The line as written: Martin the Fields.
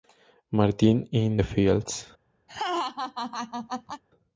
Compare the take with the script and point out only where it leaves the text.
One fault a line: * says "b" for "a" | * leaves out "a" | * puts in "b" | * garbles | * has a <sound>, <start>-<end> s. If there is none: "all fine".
* puts in "in"
* has a laugh, 2.5-4.0 s